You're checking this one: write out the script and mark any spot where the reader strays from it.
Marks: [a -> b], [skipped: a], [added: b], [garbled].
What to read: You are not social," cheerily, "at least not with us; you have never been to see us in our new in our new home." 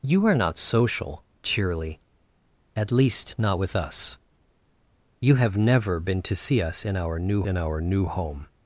You are not social," cheerily, "at least not with us; you have never been to see us in our new in our new home."